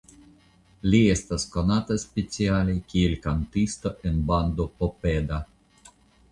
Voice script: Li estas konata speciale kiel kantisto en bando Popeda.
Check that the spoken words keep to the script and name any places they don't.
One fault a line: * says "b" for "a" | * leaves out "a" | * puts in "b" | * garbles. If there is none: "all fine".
all fine